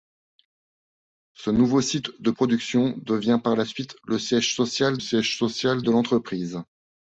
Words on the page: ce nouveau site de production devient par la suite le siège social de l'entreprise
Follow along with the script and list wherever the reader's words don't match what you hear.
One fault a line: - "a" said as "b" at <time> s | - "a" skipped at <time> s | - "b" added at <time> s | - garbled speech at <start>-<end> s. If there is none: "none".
- "siège social" added at 5.0 s